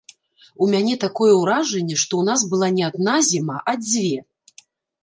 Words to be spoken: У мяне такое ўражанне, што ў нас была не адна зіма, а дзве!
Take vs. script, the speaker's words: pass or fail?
pass